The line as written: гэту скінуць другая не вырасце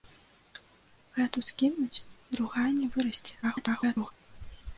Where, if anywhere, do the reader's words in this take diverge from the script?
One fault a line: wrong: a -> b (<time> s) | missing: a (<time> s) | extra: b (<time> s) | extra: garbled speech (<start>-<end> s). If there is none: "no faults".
extra: garbled speech (3.4-4.1 s)